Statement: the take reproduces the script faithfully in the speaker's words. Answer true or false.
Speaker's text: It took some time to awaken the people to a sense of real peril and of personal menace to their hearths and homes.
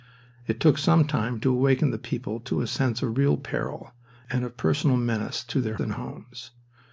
false